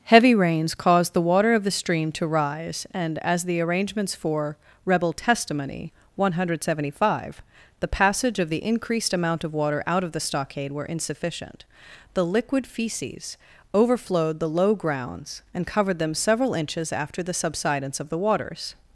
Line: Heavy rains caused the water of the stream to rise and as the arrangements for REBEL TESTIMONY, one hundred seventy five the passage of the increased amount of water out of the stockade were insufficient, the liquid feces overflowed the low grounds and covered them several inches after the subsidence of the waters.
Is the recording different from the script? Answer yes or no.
no